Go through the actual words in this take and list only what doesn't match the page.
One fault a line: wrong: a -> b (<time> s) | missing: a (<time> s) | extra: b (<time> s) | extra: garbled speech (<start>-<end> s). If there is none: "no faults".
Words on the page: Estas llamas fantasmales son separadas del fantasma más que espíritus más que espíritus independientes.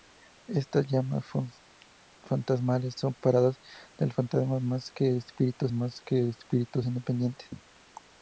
no faults